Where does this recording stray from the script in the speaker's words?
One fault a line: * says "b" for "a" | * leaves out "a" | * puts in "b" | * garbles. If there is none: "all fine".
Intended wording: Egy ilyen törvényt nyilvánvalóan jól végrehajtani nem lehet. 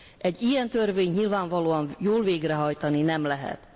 all fine